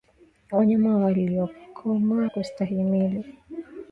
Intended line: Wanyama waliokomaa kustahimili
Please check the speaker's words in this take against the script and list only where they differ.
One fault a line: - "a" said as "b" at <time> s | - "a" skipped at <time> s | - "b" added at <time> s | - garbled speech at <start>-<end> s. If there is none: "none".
none